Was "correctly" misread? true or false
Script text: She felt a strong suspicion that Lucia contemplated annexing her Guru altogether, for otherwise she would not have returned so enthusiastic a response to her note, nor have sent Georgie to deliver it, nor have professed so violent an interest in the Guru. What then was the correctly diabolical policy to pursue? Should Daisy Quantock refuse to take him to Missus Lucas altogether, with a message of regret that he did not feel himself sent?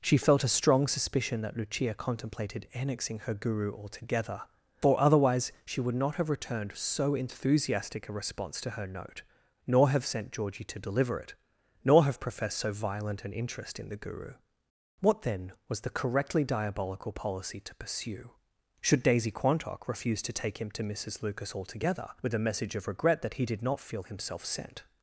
false